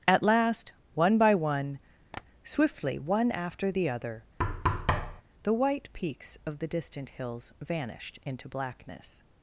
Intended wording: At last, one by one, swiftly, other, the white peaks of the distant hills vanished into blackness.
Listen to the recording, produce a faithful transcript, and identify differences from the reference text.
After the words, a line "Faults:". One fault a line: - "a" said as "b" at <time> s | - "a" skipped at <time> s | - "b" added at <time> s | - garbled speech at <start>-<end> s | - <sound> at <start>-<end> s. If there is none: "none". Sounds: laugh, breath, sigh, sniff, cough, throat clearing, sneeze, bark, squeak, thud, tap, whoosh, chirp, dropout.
At last, one by one, swiftly, one after the other, the white peaks of the distant hills vanished into blackness.
Faults:
- tap at 2.1-2.2 s
- "one after the" added at 3.0 s
- thud at 4.4-5.2 s